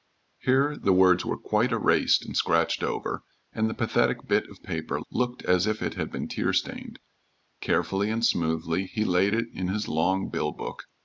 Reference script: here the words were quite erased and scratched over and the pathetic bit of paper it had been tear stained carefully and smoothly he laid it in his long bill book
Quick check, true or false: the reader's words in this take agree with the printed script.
false